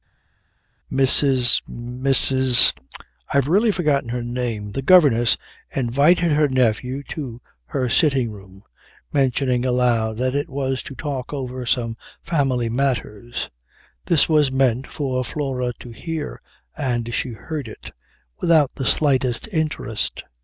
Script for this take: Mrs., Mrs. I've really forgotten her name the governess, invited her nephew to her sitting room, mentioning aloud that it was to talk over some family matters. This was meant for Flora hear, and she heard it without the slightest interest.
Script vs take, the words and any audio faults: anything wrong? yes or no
yes